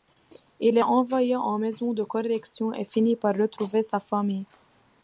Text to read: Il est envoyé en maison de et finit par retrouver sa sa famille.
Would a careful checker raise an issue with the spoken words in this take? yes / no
yes